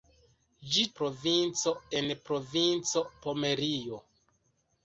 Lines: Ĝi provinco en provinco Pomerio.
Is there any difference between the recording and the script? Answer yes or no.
no